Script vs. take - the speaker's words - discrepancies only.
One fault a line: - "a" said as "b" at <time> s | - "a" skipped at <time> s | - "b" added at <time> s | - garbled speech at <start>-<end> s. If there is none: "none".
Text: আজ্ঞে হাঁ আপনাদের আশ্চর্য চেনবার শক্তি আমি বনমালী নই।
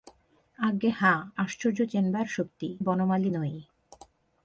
- "আপনাদের" skipped at 1.2 s
- "আমি" skipped at 2.7 s